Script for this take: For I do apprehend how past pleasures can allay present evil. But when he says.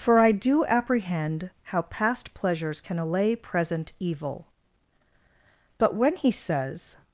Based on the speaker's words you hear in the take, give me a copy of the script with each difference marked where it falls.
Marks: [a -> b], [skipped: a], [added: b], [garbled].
For I do apprehend how past pleasures can allay present evil. But when he says.